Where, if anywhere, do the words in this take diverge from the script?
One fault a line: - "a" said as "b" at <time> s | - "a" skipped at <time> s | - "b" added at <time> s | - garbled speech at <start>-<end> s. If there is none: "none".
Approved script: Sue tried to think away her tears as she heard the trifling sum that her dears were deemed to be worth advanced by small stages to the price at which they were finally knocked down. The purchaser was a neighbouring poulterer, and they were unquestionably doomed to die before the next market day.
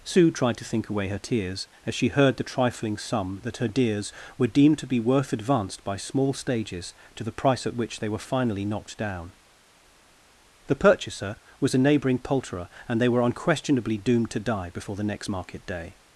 none